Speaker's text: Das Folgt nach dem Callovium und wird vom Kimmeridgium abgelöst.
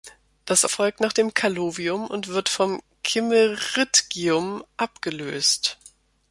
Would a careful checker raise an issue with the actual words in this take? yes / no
no